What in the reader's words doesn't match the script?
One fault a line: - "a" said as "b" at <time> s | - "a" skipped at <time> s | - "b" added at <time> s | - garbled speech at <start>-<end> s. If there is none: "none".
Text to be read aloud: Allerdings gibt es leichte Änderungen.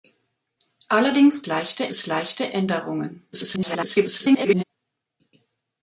- "gibt" said as "leichte" at 1.5 s
- garbled speech at 3.3-4.6 s